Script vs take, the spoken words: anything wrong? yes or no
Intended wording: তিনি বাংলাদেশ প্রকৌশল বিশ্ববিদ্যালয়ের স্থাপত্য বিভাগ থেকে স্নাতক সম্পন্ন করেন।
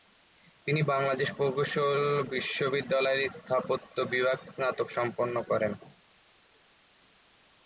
yes